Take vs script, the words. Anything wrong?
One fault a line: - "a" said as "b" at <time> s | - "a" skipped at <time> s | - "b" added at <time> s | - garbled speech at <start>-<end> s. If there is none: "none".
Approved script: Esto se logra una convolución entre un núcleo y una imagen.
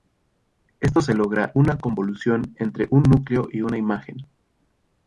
none